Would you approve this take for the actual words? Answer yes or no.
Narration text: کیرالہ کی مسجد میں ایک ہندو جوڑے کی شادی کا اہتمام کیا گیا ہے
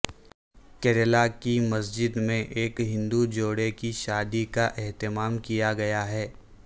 yes